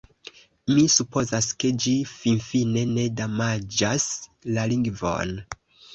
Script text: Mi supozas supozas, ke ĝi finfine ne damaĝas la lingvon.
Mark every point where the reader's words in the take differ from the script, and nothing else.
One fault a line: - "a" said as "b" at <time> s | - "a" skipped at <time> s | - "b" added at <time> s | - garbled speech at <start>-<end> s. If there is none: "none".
- "supozas" skipped at 1.5 s